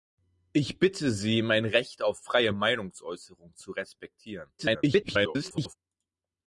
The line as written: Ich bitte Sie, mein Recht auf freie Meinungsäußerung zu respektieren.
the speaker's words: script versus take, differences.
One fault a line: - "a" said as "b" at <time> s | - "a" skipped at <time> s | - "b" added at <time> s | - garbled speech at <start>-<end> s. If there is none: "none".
- garbled speech at 4.6-5.8 s